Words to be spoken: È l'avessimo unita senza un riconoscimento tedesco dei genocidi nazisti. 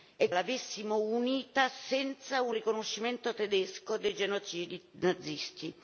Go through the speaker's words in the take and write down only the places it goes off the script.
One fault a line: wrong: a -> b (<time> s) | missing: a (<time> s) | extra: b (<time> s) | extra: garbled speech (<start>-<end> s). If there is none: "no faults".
no faults